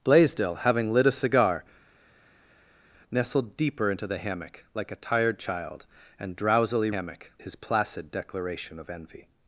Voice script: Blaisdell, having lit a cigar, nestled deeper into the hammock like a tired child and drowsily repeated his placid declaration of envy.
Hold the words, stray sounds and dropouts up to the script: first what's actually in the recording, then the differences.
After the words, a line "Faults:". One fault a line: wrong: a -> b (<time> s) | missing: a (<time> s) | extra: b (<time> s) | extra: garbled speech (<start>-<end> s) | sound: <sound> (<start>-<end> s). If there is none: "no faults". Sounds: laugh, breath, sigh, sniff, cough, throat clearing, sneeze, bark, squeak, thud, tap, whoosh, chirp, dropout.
Blaisdell, having lit a cigar, nestled deeper into the hammock like a tired child and drowsily hammock his placid declaration of envy.
Faults:
wrong: repeated -> hammock (6.9 s)